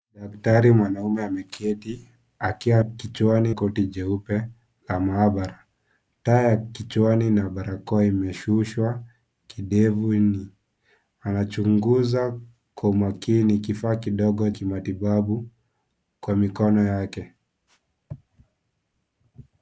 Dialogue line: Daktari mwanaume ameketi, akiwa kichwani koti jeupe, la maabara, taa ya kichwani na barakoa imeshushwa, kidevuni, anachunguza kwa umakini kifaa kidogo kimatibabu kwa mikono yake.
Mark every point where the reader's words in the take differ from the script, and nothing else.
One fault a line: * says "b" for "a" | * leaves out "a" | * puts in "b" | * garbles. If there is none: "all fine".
all fine